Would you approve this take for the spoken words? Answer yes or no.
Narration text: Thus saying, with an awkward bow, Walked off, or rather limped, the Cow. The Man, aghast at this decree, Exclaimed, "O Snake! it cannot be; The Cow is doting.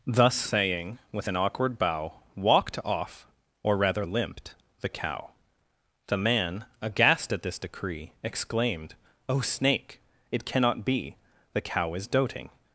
yes